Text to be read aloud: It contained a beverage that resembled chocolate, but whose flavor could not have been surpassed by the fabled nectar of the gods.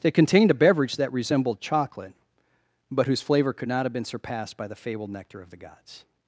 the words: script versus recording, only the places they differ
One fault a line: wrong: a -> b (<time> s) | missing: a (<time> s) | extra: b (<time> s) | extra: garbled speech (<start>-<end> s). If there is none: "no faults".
no faults